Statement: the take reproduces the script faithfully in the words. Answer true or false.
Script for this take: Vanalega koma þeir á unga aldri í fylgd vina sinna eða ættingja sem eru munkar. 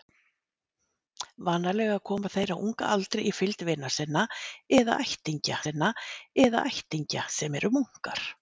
false